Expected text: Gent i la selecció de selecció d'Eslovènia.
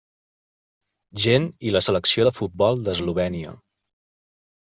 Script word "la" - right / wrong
right